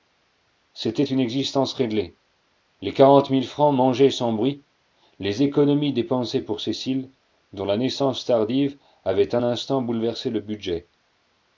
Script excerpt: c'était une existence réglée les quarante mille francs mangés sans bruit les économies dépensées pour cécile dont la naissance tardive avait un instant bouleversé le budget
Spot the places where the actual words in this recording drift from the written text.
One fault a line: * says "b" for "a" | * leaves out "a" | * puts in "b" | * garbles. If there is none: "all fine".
all fine